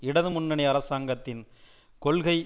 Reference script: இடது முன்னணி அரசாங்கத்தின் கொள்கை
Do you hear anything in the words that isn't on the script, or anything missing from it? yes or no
no